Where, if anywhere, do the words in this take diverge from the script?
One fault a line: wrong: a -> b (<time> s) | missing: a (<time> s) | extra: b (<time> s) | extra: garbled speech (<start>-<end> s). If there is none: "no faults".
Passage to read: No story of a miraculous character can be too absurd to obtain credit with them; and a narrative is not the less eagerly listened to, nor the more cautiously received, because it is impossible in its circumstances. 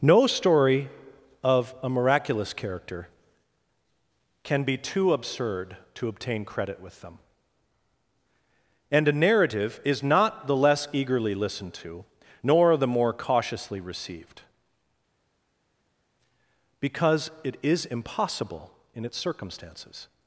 no faults